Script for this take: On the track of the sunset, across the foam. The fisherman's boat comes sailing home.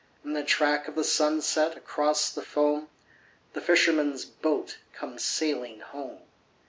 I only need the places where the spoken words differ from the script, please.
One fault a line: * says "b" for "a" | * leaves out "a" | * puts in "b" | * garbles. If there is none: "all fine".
* says "In" for "On"